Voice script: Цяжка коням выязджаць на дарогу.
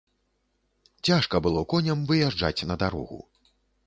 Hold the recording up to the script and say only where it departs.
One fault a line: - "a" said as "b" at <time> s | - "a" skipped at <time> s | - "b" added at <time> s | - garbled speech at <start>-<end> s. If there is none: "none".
- "было" added at 1.5 s